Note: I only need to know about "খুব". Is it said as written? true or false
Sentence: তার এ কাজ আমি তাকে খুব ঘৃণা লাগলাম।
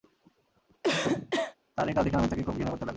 true